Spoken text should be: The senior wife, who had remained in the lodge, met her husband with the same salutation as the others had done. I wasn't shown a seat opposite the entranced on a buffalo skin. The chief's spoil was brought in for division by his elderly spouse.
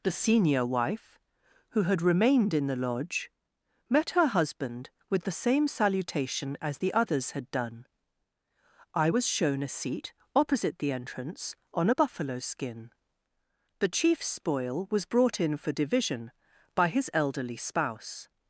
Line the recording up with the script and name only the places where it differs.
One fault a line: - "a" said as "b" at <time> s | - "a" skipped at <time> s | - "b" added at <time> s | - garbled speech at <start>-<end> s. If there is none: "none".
- "wasn't" said as "was" at 9.1 s
- "entranced" said as "entrance" at 10.9 s